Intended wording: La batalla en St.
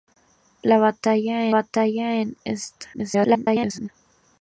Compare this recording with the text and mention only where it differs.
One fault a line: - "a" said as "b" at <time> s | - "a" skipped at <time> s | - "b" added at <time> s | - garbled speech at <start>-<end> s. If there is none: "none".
- "batalla" added at 1.5 s
- garbled speech at 2.9-3.9 s